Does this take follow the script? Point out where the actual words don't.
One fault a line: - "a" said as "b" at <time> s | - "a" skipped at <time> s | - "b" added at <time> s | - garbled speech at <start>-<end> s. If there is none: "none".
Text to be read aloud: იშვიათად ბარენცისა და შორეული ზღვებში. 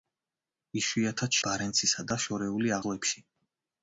none